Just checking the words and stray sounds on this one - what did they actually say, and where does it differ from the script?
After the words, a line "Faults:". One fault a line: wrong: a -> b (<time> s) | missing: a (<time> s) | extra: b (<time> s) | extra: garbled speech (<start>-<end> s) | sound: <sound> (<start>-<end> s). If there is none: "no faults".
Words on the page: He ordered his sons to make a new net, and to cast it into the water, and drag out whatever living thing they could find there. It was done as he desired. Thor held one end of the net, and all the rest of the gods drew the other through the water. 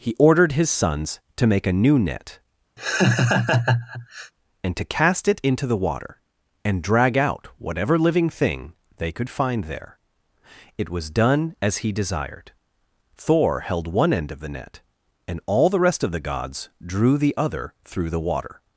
He ordered his sons to make a new net, and to cast it into the water, and drag out whatever living thing they could find there. It was done as he desired. Thor held one end of the net, and all the rest of the gods drew the other through the water.
Faults:
sound: laugh (2.8-4.3 s)